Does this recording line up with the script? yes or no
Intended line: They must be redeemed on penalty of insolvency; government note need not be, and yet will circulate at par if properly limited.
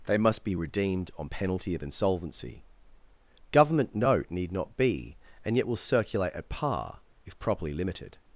yes